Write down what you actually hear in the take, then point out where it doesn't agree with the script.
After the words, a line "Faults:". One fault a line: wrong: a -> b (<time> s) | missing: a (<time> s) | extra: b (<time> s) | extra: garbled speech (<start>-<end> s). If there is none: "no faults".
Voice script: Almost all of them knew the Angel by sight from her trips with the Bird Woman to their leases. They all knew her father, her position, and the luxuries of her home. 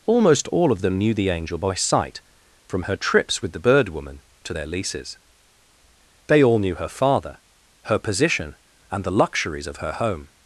Almost all of them knew the Angel by sight from her trips with the Bird Woman to their leases. They all knew her father, her position, and the luxuries of her home.
Faults:
no faults